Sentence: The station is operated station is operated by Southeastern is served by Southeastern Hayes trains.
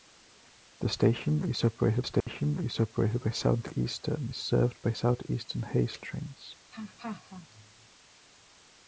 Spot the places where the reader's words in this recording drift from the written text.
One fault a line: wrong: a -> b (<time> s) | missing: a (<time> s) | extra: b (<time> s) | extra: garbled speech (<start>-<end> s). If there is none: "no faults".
no faults